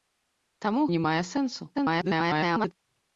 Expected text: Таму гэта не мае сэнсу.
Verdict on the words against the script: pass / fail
fail